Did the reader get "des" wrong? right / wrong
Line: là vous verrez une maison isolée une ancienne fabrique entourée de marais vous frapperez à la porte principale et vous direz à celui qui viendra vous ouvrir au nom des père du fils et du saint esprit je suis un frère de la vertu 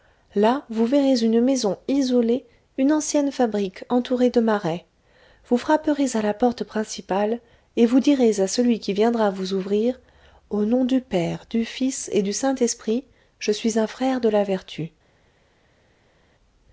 wrong